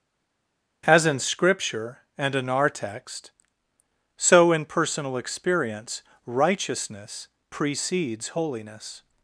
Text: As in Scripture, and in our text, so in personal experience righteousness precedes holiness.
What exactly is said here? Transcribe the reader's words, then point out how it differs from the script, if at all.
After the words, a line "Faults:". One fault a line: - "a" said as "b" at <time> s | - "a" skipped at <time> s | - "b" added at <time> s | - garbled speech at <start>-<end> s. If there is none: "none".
As in Scripture, and in our text, so in personal experience righteousness precedes holiness.
Faults:
none